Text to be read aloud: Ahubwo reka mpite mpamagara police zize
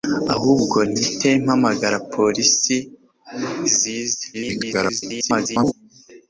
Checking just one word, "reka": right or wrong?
wrong